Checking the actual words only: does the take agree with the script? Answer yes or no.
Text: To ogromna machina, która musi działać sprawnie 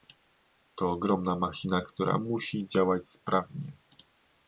yes